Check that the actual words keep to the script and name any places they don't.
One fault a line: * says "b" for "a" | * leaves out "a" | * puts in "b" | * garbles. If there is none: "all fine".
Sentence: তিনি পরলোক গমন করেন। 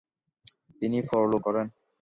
* leaves out "গমন"